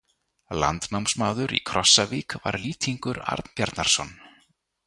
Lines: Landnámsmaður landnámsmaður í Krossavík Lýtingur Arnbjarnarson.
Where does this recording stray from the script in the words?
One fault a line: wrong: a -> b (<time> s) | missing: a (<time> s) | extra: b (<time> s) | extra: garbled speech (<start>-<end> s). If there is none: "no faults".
missing: landnámsmaður (1.5 s)
extra: var (2.4 s)